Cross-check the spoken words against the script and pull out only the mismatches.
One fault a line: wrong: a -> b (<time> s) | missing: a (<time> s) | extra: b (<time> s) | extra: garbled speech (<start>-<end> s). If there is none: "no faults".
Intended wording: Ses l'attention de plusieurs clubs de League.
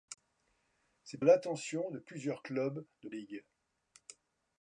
no faults